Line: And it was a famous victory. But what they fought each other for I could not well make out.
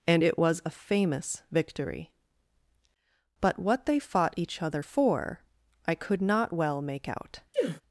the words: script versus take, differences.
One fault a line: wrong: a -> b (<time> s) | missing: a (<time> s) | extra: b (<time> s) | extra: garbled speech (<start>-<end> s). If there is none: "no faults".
no faults